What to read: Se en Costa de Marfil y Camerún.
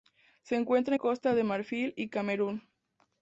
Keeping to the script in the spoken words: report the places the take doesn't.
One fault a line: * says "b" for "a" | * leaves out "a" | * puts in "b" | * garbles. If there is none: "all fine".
* puts in "encuentra"